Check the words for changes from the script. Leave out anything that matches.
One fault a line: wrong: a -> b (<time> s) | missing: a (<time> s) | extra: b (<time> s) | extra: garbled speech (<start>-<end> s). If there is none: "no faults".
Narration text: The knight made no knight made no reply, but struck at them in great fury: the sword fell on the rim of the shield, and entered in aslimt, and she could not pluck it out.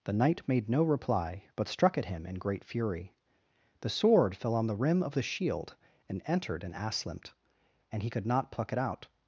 missing: knight made no (0.8 s)
wrong: them -> him (2.0 s)
wrong: she -> he (8.0 s)